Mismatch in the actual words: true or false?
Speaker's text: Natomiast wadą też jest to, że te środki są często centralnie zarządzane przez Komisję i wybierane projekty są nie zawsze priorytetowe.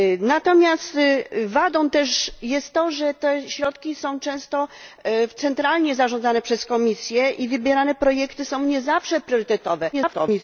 true